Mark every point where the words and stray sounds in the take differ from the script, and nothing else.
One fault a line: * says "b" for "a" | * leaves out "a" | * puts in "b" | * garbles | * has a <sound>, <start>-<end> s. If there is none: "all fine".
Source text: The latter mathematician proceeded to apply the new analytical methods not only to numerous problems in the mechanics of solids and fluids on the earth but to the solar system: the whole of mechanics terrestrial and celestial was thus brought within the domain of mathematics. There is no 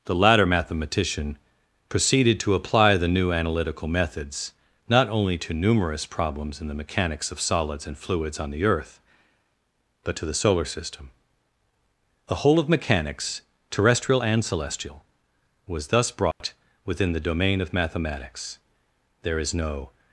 * has a dropout, 16.3-16.4 s